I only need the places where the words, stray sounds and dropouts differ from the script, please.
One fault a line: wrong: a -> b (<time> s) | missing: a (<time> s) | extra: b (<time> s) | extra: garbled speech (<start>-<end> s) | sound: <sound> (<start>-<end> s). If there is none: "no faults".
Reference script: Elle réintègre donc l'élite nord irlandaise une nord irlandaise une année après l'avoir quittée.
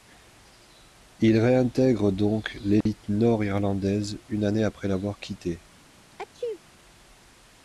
wrong: Elle -> Il (1.2 s)
sound: dropout (2.8-2.9 s)
missing: nord irlandaise une (4.4 s)
sound: sneeze (6.1-6.6 s)